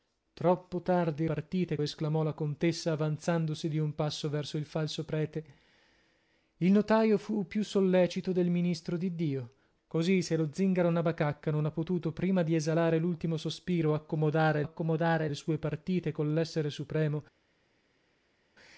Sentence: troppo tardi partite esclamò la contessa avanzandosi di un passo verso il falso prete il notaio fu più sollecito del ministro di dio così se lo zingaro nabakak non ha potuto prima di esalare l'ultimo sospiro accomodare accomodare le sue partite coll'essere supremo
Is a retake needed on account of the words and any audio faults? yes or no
no